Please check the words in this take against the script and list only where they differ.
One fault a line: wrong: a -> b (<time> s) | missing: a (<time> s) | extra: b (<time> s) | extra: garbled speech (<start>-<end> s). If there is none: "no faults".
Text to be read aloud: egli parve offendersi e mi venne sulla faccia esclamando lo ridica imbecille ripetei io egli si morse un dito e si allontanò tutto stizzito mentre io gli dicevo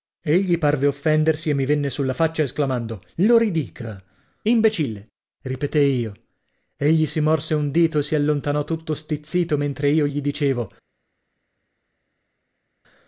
no faults